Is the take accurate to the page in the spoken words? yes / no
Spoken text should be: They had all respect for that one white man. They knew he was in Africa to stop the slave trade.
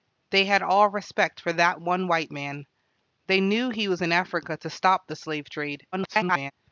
no